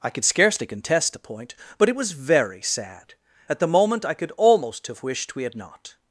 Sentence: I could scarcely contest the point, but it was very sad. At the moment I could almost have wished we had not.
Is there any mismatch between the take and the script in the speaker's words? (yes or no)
no